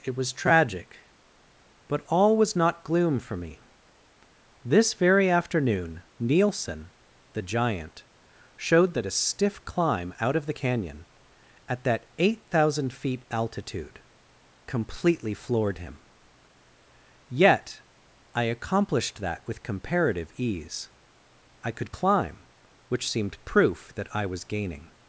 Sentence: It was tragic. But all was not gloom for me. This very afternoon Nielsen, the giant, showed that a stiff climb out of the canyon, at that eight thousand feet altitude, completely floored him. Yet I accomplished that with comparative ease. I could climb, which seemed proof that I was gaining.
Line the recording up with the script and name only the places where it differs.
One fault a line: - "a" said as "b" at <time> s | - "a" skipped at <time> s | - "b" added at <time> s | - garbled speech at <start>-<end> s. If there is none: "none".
none